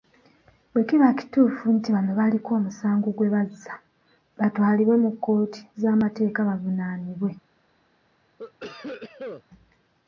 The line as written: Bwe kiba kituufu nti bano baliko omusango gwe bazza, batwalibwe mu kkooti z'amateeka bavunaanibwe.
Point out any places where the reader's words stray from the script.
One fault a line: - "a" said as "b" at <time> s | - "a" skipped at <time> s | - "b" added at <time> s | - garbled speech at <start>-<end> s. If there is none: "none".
none